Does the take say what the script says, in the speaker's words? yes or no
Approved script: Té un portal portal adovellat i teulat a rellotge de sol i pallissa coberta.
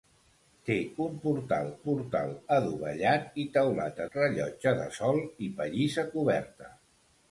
yes